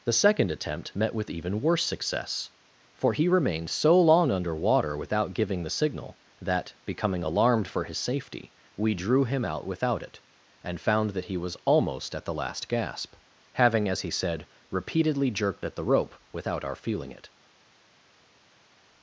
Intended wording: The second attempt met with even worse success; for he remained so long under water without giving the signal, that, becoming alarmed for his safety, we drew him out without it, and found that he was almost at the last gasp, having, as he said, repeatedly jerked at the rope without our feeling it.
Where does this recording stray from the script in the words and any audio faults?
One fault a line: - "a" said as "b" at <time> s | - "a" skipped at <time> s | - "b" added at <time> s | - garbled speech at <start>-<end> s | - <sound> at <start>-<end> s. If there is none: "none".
none